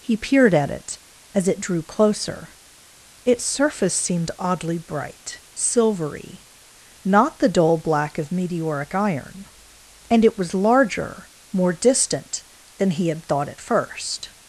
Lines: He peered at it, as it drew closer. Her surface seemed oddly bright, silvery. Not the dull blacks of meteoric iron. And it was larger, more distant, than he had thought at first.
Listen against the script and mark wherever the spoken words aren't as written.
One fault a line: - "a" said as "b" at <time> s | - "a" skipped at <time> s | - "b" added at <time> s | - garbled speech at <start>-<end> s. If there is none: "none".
- "Her" said as "Its" at 3.2 s
- "blacks" said as "black" at 7.8 s